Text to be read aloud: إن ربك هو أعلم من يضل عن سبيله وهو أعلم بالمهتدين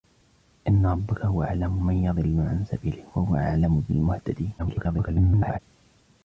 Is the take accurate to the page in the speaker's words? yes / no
no